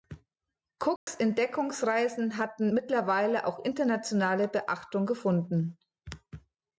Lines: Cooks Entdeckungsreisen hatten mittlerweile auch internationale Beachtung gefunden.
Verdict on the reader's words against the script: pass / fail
pass